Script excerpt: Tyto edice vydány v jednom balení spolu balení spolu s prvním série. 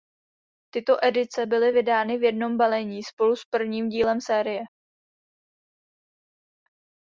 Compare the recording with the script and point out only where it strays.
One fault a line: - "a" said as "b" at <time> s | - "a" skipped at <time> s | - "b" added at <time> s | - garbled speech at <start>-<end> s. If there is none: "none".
- "byly" added at 1.4 s
- "balení spolu" skipped at 3.4 s
- "dílem" added at 3.9 s